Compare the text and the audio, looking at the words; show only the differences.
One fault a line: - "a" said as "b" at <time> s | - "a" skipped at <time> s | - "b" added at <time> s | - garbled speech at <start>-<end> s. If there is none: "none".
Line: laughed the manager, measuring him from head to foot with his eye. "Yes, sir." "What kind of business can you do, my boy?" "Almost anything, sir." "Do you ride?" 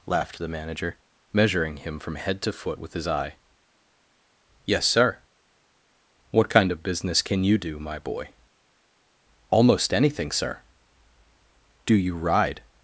none